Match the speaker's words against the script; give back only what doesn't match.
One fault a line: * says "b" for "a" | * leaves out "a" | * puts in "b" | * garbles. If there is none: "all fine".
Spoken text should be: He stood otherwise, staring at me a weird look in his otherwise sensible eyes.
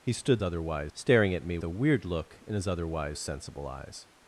all fine